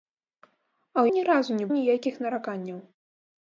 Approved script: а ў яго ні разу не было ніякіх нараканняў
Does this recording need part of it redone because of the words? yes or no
yes